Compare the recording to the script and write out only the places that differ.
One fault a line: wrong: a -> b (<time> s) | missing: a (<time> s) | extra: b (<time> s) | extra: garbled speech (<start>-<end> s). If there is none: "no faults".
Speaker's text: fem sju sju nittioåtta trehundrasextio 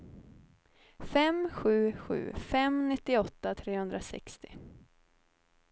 extra: fem (2.4 s)